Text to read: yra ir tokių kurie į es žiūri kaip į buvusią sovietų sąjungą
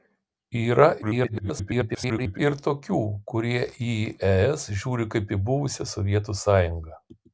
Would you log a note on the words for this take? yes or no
yes